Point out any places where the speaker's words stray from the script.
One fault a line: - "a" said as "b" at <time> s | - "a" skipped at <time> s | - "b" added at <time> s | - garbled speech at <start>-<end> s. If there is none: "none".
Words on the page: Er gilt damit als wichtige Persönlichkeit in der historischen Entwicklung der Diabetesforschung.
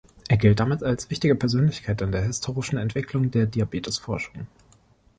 none